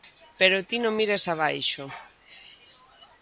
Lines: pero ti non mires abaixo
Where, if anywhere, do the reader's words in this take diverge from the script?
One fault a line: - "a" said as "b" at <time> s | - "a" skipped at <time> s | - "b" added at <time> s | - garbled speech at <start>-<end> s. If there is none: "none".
none